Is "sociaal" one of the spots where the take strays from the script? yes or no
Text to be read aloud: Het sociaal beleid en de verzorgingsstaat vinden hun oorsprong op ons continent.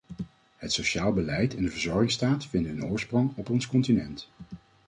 no